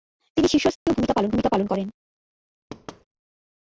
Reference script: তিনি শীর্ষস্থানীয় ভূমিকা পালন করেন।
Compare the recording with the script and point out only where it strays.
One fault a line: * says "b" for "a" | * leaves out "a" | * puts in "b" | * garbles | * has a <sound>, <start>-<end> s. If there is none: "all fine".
* has a dropout, 0.8-0.9 s
* puts in "ভূমিকা পালন"
* has a thud, 2.7-3.0 s